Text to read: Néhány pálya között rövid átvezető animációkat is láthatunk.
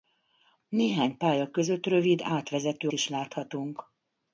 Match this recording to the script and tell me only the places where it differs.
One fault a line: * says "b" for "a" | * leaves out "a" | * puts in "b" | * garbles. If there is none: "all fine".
* leaves out "animációkat"